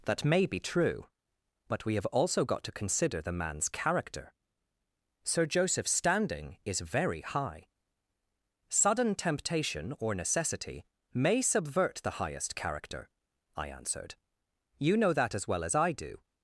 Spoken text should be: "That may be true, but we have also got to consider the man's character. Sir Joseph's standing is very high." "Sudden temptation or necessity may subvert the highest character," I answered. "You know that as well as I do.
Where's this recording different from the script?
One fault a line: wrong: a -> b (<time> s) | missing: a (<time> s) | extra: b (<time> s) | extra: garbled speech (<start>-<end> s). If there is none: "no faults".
no faults